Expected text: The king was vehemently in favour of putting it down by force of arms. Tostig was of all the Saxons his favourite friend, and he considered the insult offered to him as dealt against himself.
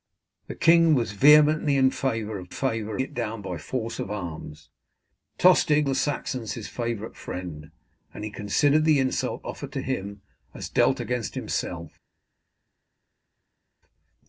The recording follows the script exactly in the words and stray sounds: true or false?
false